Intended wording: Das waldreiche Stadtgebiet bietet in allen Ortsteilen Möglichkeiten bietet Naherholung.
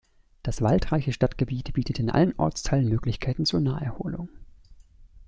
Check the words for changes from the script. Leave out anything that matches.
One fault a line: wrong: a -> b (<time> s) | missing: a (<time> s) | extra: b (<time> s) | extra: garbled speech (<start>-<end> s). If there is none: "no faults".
wrong: bietet -> zur (3.4 s)